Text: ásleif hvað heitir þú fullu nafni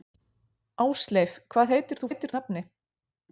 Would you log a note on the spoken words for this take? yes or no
yes